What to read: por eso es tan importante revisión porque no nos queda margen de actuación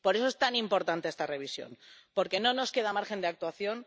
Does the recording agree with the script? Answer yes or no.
no